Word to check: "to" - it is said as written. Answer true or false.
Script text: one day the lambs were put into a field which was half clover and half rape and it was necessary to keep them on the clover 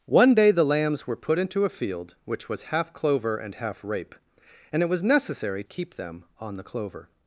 false